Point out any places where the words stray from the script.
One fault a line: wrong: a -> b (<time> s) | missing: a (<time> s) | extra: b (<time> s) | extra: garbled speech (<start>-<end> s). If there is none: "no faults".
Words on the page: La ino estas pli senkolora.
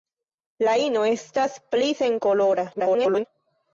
extra: garbled speech (2.7-3.2 s)